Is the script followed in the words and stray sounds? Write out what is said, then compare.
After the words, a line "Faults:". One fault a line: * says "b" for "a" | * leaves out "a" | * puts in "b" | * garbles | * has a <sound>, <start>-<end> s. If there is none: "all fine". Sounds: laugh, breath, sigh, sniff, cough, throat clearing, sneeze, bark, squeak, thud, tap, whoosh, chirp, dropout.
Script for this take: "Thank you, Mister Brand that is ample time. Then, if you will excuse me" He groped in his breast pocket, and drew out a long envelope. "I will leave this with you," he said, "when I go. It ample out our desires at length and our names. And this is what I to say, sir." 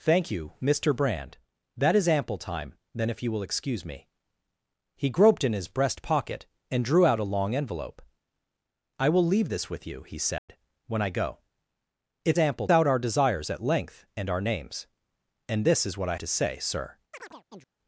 "Thank you, Mister Brand that is ample time. Then, if you will excuse me" He groped in his breast pocket, and drew out a long envelope. "I will leave this with you," he said, "when I go. It ample out our desires at length and our names. And this is what I to say, sir."
Faults:
* has a dropout, 10.4-10.5 s
* has a chirp, 17.1-17.7 s